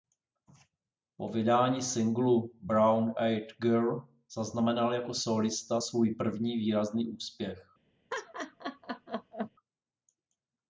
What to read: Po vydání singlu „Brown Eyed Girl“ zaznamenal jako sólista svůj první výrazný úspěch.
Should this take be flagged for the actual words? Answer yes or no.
no